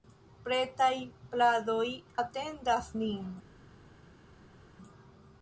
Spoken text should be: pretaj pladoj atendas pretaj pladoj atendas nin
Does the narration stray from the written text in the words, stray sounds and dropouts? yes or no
yes